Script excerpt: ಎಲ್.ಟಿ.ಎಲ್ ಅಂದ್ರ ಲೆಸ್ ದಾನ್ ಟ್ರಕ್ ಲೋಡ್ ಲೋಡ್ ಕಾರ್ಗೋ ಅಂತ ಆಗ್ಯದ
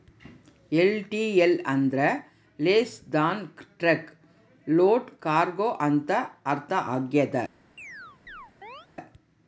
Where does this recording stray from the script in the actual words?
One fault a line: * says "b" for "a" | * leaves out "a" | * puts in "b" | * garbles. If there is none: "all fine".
* leaves out "ಲೋಡ್"
* puts in "ಅರ್ಥ"